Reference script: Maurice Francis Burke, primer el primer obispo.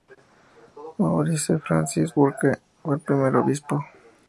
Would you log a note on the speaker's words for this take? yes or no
yes